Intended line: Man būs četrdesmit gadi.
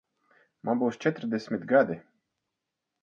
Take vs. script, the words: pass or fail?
pass